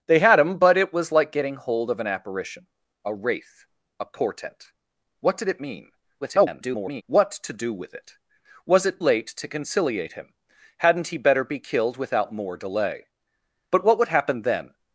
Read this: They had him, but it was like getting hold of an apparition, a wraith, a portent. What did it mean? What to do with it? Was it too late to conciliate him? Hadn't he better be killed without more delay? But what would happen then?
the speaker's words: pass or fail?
fail